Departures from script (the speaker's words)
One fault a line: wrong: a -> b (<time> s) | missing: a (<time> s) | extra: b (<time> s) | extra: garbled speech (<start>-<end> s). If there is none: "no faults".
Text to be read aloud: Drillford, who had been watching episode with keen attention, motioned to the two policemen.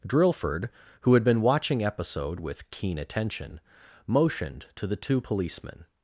no faults